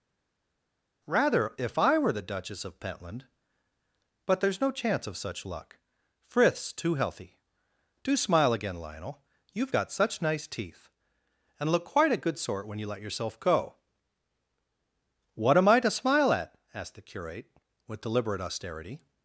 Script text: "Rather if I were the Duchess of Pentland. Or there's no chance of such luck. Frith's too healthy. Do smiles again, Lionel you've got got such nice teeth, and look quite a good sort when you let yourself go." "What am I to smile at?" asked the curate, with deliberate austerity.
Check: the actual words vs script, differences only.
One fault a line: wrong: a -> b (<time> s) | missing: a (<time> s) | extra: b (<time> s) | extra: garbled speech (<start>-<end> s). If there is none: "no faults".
wrong: Or -> But (4.2 s)
wrong: smiles -> smile (8.1 s)
missing: got (9.9 s)